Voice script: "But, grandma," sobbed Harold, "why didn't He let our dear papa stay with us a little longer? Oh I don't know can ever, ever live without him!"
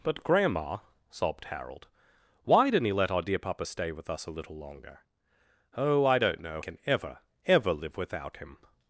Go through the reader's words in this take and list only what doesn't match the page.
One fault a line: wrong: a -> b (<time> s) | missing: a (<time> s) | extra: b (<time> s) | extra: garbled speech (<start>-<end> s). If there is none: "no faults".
no faults